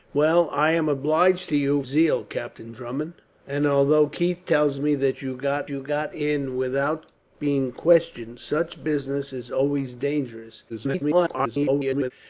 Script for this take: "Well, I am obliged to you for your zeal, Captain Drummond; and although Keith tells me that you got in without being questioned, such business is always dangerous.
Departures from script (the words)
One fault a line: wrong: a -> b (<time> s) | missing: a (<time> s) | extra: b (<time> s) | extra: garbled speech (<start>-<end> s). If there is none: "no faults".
missing: for your (1.8 s)
extra: you got (5.7 s)
extra: garbled speech (10.7-12.1 s)